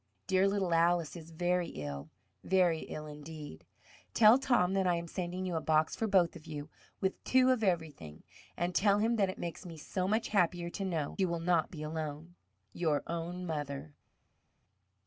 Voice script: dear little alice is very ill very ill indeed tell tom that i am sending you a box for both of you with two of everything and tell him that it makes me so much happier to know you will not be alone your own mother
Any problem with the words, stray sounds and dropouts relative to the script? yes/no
no